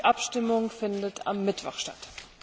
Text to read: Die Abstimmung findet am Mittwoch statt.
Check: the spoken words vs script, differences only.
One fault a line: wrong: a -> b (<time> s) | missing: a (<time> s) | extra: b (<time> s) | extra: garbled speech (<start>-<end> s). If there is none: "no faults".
no faults